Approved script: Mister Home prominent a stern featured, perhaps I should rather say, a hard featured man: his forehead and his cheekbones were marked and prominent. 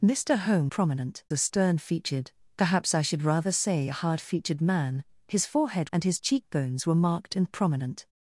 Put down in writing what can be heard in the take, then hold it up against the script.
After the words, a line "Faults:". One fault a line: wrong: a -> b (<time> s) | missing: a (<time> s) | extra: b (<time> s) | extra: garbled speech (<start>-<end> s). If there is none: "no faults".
Mister Home prominent a stern featured, perhaps I should rather say, a hard featured man: his forehead and his cheekbones were marked and prominent.
Faults:
no faults